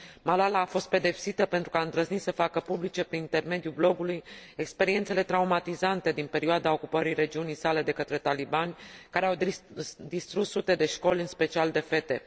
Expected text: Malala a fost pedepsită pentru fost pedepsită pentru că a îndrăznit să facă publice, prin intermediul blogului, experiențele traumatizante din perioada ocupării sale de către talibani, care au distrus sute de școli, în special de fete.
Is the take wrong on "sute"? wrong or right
right